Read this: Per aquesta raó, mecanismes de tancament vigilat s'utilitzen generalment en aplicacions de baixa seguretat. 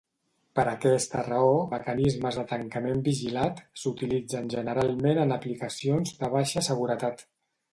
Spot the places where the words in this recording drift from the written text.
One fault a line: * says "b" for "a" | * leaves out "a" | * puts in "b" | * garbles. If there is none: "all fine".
all fine